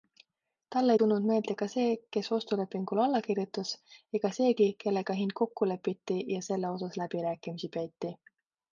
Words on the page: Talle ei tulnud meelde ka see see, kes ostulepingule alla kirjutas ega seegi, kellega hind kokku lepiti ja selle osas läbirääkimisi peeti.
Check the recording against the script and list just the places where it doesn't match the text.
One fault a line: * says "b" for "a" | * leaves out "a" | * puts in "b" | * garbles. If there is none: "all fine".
* leaves out "see"